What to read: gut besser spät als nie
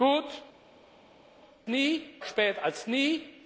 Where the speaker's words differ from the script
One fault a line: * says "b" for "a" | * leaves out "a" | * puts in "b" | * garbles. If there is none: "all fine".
* says "nie" for "besser"